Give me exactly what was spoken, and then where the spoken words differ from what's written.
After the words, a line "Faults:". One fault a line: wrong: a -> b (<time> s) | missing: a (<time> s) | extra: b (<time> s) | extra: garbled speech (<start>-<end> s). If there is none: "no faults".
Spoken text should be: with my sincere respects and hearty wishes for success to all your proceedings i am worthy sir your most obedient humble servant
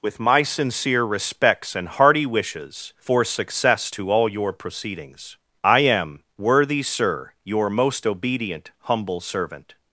with my sincere respects and hearty wishes for success to all your proceedings i am worthy sir your most obedient humble servant
Faults:
no faults